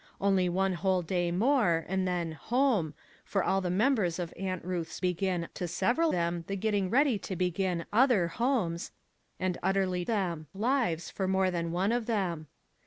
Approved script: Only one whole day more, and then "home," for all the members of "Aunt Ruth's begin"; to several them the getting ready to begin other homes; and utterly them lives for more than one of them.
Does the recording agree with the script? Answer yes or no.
yes